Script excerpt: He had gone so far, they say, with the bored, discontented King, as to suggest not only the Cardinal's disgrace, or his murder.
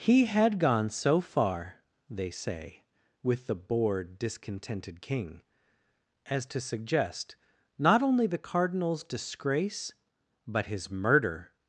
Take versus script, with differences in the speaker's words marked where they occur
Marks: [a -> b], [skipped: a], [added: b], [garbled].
He had gone so far, they say, with the bored, discontented King, as to suggest not only the Cardinal's disgrace, [or -> but] his murder.